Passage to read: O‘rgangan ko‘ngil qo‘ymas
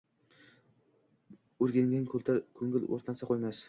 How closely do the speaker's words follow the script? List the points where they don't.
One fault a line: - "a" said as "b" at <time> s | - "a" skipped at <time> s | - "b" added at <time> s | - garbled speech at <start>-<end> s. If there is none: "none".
- "o‘rtansa" added at 3.0 s